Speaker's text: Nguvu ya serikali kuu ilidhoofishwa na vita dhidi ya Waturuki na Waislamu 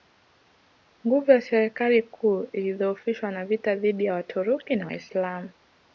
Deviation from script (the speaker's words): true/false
false